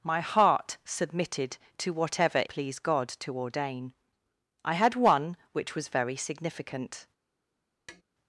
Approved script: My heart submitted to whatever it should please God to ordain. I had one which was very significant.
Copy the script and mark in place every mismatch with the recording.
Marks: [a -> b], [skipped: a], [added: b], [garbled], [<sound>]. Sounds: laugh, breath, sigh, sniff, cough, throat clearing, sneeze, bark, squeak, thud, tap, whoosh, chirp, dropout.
My heart submitted to whatever [skipped: it should] please God to ordain. I had one which was very significant. [tap]